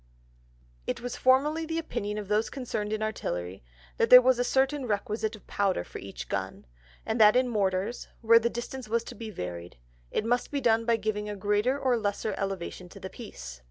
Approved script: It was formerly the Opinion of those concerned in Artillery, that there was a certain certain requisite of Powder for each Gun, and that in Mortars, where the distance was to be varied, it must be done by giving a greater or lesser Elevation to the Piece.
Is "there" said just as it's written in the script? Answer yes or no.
yes